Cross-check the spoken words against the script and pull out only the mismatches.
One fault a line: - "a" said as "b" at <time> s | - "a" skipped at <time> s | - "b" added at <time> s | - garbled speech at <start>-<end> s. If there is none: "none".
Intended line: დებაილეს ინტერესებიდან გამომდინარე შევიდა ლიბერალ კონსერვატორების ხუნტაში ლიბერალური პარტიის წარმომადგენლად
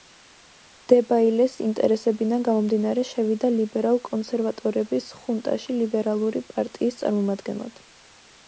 none